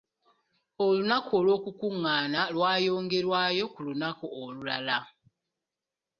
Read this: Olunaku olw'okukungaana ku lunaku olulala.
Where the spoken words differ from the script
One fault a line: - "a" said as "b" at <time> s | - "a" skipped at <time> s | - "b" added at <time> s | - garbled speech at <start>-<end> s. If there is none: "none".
- "lwayongerwayo" added at 2.5 s